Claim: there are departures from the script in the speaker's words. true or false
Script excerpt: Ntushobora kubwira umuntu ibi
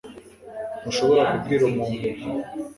false